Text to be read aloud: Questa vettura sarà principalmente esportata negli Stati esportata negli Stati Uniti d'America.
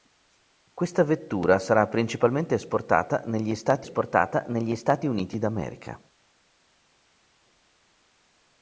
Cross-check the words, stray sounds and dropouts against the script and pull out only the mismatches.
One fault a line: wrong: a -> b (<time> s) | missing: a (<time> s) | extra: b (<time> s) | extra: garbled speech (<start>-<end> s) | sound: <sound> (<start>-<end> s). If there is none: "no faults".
no faults